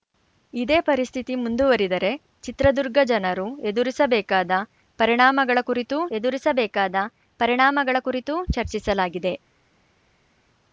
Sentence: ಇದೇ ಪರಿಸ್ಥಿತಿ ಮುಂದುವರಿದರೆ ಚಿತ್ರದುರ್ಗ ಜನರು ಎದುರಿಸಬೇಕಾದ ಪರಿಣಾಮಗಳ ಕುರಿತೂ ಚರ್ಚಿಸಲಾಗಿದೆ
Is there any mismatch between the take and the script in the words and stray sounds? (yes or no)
yes